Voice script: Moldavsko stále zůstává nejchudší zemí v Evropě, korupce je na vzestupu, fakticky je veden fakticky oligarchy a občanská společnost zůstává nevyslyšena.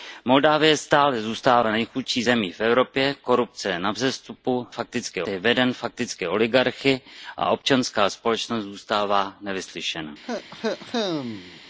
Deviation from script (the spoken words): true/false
false